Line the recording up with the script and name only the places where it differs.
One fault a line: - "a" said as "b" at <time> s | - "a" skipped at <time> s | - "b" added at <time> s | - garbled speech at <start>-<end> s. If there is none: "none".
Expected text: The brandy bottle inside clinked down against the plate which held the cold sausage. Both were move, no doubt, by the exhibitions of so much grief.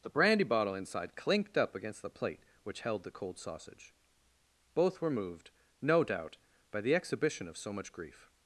- "down" said as "up" at 1.6 s
- "move" said as "moved" at 5.1 s
- "exhibitions" said as "exhibition" at 7.0 s